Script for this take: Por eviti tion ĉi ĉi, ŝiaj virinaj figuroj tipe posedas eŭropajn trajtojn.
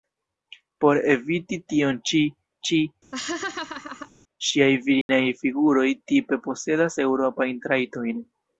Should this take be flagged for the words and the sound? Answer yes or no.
yes